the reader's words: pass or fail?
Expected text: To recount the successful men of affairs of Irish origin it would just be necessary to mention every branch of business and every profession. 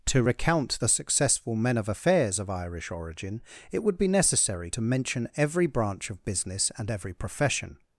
fail